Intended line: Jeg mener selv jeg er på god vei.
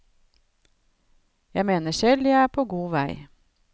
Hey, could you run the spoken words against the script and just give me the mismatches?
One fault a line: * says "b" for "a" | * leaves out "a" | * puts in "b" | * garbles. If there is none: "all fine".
all fine